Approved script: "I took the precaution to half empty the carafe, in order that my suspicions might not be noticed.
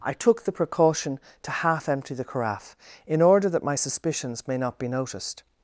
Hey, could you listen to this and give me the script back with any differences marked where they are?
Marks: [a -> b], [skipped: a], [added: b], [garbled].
"I took the precaution to half empty the carafe, in order that my suspicions [might -> may] not be noticed.